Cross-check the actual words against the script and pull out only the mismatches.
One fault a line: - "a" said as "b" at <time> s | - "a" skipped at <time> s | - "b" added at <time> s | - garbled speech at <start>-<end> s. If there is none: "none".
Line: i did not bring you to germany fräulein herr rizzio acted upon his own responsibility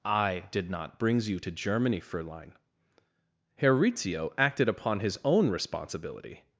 - "bring" said as "brings" at 1.0 s